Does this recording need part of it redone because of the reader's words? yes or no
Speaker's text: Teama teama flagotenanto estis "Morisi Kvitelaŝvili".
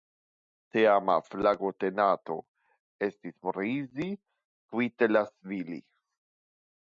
yes